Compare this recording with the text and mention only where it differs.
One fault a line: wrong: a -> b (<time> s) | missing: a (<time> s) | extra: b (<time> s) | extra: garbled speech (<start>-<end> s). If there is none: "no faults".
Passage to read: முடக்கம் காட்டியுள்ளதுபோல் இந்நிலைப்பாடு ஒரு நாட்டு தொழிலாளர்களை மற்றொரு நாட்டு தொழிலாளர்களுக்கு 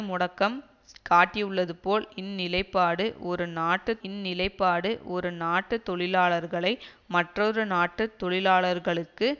extra: இந்நிலைப்பாடு ஒரு நாட்டு (4.0 s)